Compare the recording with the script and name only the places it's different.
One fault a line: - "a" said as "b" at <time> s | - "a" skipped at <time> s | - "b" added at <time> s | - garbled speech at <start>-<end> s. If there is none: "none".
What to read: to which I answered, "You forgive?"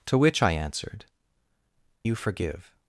none